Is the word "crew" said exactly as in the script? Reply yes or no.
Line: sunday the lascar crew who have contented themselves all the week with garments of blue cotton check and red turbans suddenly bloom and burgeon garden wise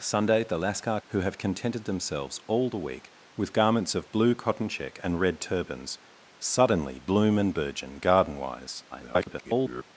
no